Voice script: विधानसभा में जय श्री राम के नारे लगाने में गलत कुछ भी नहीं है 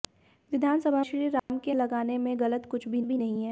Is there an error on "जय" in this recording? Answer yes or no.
yes